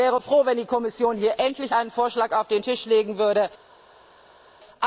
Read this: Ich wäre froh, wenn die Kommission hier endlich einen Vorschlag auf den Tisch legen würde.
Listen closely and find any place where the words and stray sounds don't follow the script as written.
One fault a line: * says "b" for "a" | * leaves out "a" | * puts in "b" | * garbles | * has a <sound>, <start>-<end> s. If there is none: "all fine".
all fine